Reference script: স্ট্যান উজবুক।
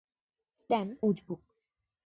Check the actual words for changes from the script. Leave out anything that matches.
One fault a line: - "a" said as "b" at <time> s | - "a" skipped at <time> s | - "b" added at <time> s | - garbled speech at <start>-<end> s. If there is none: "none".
none